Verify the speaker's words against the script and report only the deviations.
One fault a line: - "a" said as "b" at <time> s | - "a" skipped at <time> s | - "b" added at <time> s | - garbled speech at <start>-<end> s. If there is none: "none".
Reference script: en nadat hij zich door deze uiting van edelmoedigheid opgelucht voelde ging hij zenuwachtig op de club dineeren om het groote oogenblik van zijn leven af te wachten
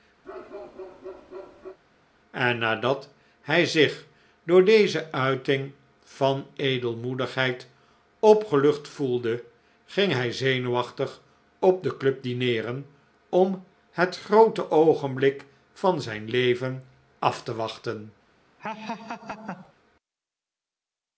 none